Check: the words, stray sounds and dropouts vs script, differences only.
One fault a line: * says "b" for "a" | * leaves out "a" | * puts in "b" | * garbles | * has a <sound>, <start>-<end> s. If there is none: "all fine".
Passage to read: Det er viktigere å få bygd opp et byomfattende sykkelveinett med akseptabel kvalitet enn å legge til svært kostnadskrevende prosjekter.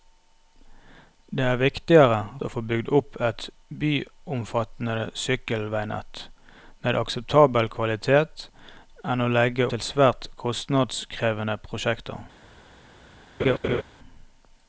* has a laugh, 13.4-13.8 s